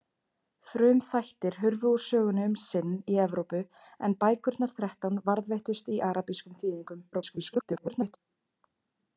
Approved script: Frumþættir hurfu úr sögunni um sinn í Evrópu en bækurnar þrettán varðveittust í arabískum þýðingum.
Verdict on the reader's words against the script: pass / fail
fail